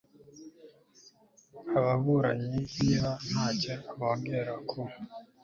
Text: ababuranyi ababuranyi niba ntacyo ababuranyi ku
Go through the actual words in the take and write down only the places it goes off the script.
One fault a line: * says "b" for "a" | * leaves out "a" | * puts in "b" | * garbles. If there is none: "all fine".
* leaves out "ababuranyi"
* says "bongera" for "ababuranyi"